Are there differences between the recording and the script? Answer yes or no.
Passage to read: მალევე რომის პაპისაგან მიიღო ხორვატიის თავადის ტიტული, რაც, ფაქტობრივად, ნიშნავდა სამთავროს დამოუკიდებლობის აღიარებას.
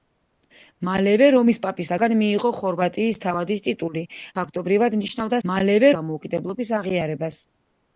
yes